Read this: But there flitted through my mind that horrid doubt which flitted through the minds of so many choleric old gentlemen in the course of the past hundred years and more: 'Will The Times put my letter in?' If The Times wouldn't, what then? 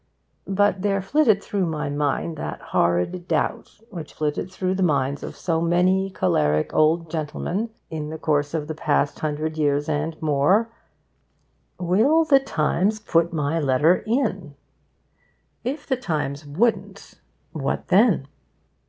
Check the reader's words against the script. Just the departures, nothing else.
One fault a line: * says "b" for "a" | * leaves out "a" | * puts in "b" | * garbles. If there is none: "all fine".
all fine